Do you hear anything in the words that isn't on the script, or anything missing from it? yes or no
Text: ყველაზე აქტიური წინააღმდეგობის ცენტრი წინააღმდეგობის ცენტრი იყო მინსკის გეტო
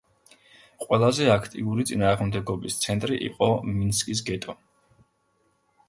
yes